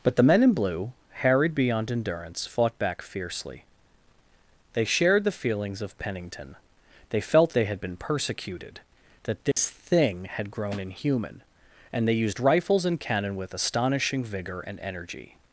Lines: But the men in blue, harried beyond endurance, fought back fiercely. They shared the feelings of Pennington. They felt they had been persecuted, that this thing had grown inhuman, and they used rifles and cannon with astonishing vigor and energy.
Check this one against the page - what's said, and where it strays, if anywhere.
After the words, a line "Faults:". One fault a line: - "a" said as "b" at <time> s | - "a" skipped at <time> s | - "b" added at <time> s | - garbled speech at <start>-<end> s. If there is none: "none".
But the men in blue, harried beyond endurance, fought back fiercely. They shared the feelings of Pennington. They felt they had been persecuted, that this thing had grown inhuman, and they used rifles and cannon with astonishing vigor and energy.
Faults:
none